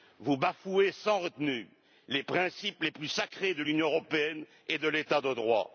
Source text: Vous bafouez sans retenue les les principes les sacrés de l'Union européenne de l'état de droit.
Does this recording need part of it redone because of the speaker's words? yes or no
yes